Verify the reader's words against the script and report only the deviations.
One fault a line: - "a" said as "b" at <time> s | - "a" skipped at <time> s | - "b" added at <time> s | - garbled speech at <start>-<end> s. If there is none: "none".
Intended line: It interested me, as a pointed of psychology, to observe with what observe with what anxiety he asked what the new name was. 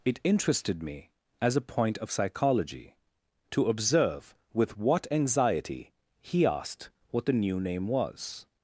- "pointed" said as "point" at 1.6 s
- "observe with what" skipped at 5.0 s